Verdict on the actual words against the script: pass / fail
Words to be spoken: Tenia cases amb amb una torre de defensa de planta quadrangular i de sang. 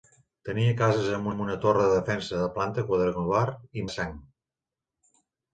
pass